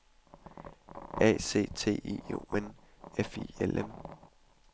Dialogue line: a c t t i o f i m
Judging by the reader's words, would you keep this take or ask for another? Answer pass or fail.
fail